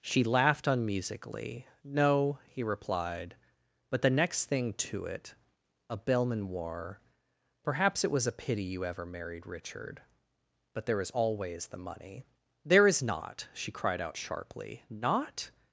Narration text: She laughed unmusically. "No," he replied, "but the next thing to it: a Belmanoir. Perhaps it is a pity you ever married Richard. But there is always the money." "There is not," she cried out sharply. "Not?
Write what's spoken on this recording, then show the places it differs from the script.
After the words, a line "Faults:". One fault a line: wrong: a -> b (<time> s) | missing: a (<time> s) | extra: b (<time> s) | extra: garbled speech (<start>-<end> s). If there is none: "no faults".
She laughed unmusically. "No," he replied, "but the next thing to it: a Belmanoir. Perhaps it was a pity you ever married Richard. But there is always the money." "There is not," she cried out sharply. "Not?
Faults:
wrong: is -> was (8.1 s)